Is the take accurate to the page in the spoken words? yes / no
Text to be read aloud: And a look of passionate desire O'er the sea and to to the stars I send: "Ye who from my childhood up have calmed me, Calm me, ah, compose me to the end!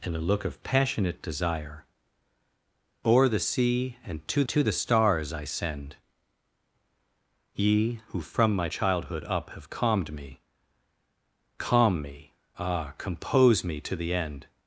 yes